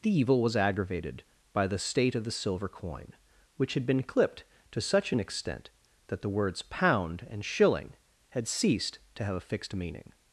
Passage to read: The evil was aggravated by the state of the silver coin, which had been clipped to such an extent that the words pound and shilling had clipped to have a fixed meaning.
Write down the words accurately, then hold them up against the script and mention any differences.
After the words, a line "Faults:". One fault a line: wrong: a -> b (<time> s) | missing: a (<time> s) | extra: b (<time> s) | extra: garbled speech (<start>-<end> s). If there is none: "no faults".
The evil was aggravated by the state of the silver coin, which had been clipped to such an extent that the words pound and shilling had ceased to have a fixed meaning.
Faults:
wrong: clipped -> ceased (8.5 s)